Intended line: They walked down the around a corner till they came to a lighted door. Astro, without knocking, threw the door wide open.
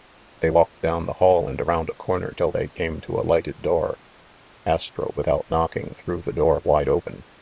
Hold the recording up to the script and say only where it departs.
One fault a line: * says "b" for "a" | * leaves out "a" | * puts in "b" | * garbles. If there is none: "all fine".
* puts in "hall and"